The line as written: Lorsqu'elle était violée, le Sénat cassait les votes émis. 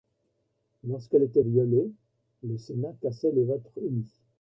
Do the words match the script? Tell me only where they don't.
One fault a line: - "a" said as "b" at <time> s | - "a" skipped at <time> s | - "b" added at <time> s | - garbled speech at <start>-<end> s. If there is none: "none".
none